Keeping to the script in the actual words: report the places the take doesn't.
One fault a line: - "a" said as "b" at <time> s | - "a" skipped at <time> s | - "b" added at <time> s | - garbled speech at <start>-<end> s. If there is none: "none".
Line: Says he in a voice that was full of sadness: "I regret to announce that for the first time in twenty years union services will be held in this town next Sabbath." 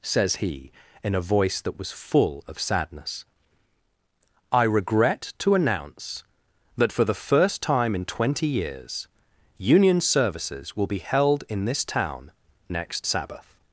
none